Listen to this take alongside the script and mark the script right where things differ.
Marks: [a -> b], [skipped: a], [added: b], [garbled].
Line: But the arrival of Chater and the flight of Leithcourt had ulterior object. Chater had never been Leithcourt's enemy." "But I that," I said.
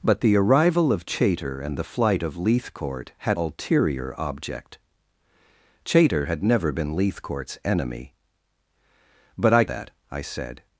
But the arrival of Chater and the flight of Leithcourt had ulterior object. Chater had never been Leithcourt's enemy." "But I that," I said.